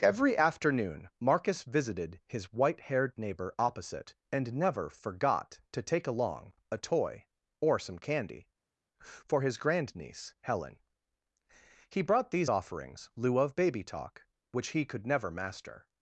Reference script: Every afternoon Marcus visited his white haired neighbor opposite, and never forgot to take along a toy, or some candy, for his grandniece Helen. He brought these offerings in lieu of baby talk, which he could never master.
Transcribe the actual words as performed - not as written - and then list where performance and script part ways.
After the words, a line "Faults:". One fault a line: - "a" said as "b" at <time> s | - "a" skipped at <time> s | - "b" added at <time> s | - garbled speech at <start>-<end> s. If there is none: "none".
Every afternoon Marcus visited his white haired neighbor opposite, and never forgot to take along a toy, or some candy, for his grandniece Helen. He brought these offerings lieu of baby talk, which he could never master.
Faults:
- "in" skipped at 13.1 s